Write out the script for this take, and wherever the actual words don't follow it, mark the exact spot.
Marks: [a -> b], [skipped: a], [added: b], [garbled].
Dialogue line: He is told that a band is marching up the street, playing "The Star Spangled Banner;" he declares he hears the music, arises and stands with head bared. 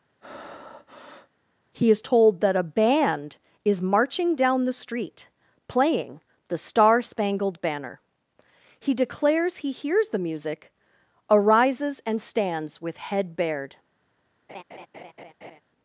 He is told that a band is marching [up -> down] the street, playing "The Star Spangled Banner;" he declares he hears the music, arises and stands with head bared.